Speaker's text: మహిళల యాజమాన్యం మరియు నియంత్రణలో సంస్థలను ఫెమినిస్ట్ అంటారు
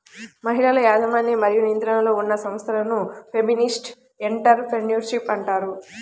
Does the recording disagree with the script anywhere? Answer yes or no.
yes